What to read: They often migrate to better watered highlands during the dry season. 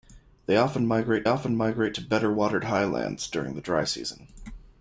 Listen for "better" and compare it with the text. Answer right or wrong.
right